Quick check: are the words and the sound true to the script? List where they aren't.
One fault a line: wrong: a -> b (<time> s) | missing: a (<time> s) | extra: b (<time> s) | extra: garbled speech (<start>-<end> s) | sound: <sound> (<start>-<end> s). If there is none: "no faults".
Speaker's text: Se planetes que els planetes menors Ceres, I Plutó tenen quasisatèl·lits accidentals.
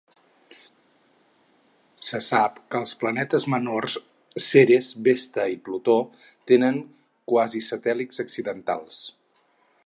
wrong: planetes -> sap (2.3 s)
extra: Vesta (5.1 s)